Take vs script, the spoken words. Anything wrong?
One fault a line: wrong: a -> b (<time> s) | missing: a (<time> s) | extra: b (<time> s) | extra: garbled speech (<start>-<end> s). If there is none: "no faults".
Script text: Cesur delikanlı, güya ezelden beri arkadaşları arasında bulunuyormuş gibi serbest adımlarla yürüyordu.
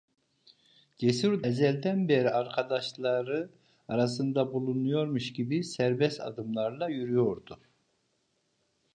missing: delikanlı güya (1.4 s)